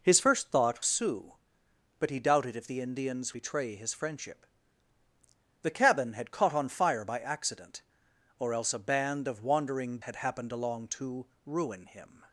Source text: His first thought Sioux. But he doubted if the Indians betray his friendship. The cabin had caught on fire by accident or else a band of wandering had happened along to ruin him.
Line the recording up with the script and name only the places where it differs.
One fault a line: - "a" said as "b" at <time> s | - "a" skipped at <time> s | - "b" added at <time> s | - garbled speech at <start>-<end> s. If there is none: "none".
none